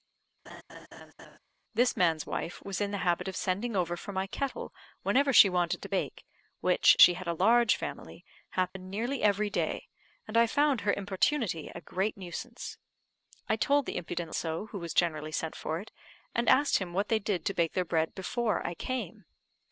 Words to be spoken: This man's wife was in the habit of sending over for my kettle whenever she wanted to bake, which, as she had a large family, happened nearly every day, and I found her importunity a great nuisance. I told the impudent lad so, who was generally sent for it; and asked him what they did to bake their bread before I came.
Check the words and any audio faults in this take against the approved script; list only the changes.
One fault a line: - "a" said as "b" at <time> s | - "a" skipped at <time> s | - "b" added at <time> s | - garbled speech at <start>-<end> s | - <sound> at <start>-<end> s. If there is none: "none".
- laugh at 0.5-1.4 s
- "as" skipped at 7.0 s
- dropout at 8.7-8.8 s
- "lad" skipped at 14.3 s